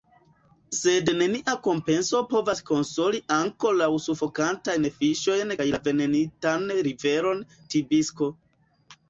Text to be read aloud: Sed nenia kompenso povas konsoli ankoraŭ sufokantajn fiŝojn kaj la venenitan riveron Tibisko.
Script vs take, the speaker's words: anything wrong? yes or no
no